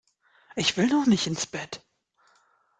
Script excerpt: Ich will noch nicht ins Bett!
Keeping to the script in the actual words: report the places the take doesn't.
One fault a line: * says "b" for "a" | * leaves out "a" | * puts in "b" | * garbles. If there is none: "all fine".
all fine